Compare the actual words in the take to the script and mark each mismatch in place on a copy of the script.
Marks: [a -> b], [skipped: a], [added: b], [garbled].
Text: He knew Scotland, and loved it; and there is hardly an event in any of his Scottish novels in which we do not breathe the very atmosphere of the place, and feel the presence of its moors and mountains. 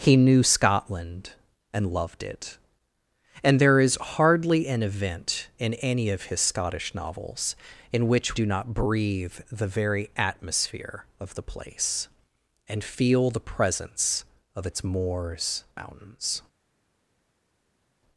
He knew Scotland, and loved it; and there is hardly an event in any of his Scottish novels in which [skipped: we] do not breathe the very atmosphere of the place, and feel the presence of its moors [skipped: and] mountains.